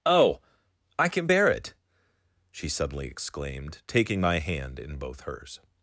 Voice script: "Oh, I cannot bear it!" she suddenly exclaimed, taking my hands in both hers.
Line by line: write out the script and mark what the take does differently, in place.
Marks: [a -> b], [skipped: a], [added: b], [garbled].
"Oh, I [cannot -> can] bear it!" she suddenly exclaimed, taking my [hands -> hand] in both hers.